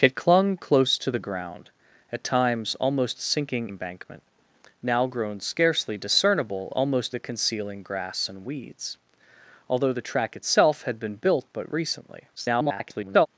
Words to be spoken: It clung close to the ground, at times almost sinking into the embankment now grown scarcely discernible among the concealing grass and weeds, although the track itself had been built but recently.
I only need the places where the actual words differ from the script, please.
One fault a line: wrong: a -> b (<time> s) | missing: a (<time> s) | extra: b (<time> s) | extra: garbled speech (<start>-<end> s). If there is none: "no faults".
missing: into the (3.7 s)
wrong: among -> almost (6.7 s)
extra: garbled speech (12.4-13.3 s)